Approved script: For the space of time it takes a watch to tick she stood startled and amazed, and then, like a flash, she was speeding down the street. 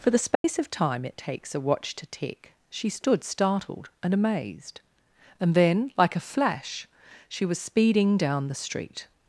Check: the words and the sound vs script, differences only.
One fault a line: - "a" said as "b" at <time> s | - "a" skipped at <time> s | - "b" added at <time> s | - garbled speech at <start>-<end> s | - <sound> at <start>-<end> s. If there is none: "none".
- dropout at 0.3-0.4 s